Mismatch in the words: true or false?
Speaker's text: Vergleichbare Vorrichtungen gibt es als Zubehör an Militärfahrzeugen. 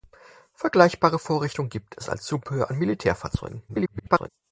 true